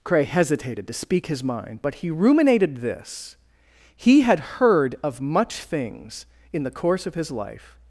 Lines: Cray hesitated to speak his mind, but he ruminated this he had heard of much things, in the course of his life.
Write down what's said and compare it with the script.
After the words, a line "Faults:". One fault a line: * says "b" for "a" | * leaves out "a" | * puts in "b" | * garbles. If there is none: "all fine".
Cray hesitated to speak his mind, but he ruminated this he had heard of much things, in the course of his life.
Faults:
all fine